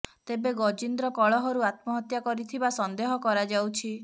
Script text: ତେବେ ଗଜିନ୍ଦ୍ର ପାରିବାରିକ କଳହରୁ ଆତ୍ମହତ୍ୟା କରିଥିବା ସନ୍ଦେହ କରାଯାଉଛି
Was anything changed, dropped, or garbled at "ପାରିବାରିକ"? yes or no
yes